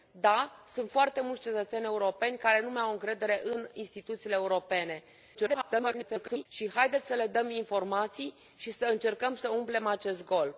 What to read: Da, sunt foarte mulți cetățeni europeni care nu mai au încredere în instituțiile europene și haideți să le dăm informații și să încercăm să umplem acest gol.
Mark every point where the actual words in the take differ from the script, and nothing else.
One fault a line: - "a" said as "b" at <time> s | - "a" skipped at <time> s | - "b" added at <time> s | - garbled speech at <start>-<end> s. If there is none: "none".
- garbled speech at 5.3-6.5 s